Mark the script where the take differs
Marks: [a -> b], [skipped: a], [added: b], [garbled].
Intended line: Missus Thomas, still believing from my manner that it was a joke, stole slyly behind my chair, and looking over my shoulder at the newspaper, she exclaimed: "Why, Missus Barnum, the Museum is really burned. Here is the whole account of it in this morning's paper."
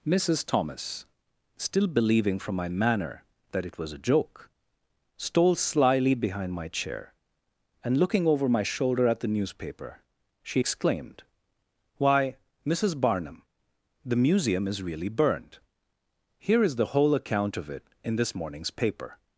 Missus Thomas, still believing from my manner that it was a joke, stole slyly behind my chair, and looking over my shoulder at the newspaper, she exclaimed: "Why, Missus Barnum, the Museum is really burned. Here is the whole account of it in this morning's paper."